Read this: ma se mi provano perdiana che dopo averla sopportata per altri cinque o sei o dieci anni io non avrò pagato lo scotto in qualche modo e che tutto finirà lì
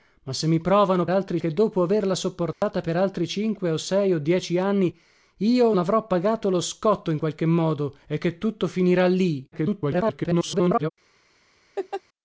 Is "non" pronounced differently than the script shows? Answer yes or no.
yes